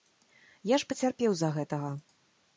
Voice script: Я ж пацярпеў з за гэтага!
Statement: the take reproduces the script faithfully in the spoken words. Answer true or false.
true